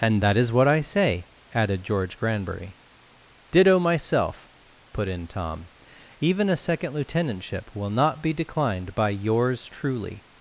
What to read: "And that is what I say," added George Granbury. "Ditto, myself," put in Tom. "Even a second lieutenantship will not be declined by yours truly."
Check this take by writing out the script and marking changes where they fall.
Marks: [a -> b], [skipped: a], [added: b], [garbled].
"And that is what I say," added George Granbury. "Ditto, myself," put in Tom. "Even a second lieutenantship will not be declined by yours truly."